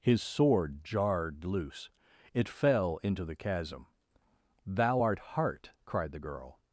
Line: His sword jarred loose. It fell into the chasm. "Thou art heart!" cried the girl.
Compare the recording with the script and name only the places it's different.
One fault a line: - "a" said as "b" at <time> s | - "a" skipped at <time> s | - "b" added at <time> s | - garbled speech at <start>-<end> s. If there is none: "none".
none